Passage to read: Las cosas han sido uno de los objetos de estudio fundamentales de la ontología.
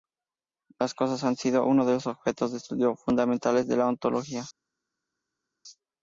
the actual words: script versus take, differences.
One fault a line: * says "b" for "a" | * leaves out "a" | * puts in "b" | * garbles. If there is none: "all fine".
all fine